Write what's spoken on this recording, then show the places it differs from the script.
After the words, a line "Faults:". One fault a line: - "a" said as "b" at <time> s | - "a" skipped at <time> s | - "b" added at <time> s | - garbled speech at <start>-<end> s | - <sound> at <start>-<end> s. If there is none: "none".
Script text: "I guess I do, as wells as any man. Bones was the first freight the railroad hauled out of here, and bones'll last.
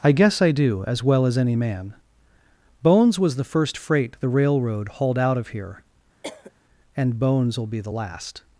"I guess I do, as well as any man. Bones was the first freight the railroad hauled out of here, and bones'll be the last.
Faults:
- "wells" said as "well" at 1.0 s
- cough at 6.2-6.5 s
- "be the" added at 7.7 s